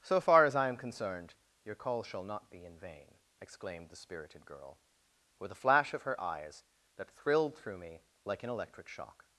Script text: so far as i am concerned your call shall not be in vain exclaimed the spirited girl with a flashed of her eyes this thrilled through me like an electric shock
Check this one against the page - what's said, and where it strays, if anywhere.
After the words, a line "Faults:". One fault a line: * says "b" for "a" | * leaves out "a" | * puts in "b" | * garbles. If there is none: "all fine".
so far as i am concerned your call shall not be in vain exclaimed the spirited girl with a flash of her eyes that thrilled through me like an electric shock
Faults:
* says "flash" for "flashed"
* says "that" for "this"